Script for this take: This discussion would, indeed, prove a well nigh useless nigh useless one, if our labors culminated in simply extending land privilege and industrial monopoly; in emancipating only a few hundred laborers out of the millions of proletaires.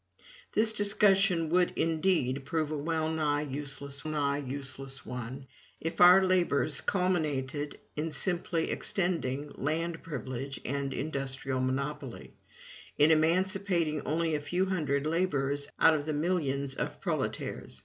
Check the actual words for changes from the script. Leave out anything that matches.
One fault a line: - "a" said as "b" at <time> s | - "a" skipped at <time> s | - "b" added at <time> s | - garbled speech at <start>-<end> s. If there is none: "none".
none